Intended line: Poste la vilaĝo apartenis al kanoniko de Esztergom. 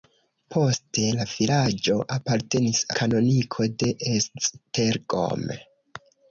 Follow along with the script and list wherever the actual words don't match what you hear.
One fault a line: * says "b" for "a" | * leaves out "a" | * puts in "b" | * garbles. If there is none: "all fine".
* leaves out "al"